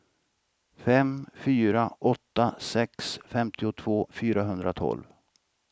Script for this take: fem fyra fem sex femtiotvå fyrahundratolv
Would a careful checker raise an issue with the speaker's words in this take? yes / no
yes